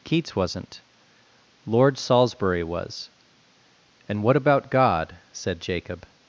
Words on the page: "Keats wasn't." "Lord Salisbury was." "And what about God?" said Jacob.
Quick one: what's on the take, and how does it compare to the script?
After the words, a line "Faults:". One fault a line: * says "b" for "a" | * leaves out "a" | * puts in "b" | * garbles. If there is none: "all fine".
"Keats wasn't." "Lord Salisbury was." "And what about God?" said Jacob.
Faults:
all fine